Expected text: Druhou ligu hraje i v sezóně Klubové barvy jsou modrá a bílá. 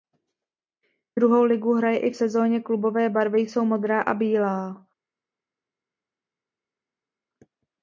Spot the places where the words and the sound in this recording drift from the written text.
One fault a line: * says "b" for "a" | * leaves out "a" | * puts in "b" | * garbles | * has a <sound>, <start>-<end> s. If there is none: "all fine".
all fine